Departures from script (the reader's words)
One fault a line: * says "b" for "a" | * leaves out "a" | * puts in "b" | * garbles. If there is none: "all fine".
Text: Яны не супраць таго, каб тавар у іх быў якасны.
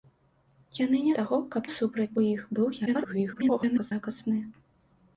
* leaves out "супраць"
* says "супраць" for "тавар"
* garbles